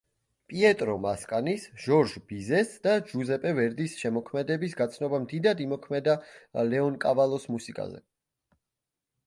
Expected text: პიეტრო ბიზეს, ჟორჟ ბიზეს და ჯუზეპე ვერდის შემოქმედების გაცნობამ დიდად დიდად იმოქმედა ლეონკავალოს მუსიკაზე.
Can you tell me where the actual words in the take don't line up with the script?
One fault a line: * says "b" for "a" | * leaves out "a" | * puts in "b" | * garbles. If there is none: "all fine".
* says "მასკანის" for "ბიზეს"
* leaves out "დიდად"